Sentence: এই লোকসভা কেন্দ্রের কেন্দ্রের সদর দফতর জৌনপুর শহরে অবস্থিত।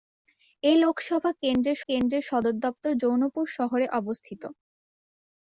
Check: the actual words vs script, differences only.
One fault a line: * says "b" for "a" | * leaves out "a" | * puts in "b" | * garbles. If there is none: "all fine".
all fine